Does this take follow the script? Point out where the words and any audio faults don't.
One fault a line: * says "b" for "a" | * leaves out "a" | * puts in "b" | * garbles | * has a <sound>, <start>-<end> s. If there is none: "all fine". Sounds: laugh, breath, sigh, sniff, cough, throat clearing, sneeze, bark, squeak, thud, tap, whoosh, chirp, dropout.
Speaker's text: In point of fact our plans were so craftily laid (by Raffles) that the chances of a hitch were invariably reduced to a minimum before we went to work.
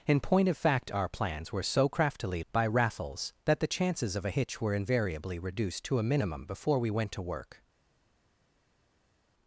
* leaves out "laid"